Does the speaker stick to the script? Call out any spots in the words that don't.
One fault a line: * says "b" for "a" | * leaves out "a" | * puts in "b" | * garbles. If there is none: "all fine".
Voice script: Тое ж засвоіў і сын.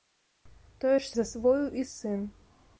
all fine